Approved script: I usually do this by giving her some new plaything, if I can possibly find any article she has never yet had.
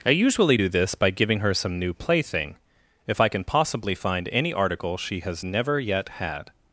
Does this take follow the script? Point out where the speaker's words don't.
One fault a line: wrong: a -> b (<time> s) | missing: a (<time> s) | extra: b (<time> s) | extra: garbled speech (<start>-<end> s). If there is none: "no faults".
no faults